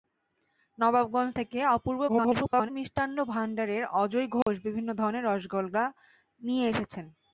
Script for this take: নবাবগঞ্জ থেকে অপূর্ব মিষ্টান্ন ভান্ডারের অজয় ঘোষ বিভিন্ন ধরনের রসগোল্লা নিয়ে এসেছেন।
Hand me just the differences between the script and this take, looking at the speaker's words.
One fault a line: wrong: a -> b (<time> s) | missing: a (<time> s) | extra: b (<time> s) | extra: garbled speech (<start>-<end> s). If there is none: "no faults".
extra: garbled speech (2.1-2.7 s)